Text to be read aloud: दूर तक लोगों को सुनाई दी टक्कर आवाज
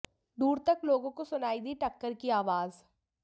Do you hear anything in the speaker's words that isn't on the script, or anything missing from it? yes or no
yes